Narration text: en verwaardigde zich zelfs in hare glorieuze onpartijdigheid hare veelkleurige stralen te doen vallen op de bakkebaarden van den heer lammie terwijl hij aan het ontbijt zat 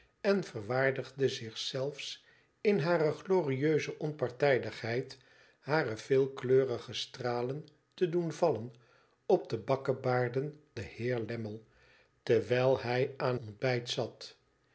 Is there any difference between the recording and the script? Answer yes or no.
yes